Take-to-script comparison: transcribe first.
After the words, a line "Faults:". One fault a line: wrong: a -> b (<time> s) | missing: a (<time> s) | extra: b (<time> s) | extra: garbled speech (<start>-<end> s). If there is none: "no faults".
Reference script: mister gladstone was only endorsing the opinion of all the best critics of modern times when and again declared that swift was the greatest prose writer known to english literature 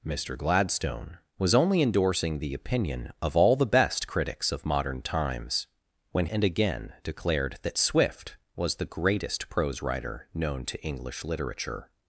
mister gladstone was only endorsing the opinion of all the best critics of modern times when and again declared that swift was the greatest prose writer known to english literature
Faults:
no faults